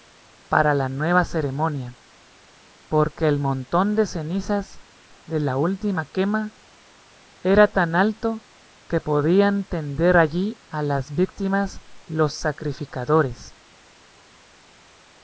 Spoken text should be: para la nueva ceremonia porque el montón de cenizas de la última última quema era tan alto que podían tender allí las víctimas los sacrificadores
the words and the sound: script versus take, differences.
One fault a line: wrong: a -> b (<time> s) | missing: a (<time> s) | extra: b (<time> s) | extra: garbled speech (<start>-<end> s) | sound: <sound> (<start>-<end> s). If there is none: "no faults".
missing: última (6.1 s)
extra: a (10.7 s)